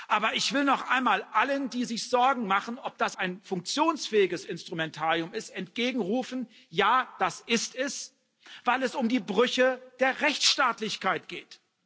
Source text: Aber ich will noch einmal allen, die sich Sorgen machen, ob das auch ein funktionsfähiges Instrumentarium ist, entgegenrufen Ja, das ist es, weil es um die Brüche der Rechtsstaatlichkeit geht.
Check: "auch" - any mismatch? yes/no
yes